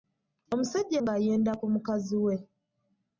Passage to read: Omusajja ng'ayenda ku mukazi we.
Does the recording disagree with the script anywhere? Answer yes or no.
no